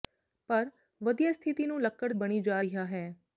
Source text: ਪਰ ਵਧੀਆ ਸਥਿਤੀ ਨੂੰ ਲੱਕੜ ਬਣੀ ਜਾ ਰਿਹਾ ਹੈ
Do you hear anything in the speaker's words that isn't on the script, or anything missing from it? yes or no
no